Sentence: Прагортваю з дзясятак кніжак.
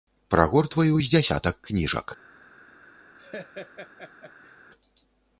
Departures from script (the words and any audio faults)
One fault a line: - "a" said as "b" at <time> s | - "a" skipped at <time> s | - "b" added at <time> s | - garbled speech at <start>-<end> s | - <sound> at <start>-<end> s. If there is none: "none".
- laugh at 3.2-4.6 s